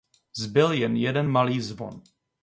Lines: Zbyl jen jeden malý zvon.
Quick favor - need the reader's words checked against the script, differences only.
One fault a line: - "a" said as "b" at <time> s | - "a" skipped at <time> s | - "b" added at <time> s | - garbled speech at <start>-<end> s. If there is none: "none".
none